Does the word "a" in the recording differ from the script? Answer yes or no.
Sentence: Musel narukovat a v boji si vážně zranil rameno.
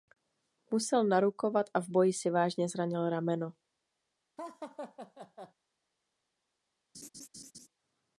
no